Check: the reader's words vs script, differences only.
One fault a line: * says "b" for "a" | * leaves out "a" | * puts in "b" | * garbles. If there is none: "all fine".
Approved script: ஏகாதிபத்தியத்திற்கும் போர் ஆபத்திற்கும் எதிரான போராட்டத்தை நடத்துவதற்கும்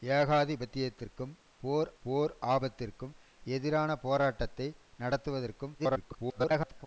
* puts in "போர்"
* garbles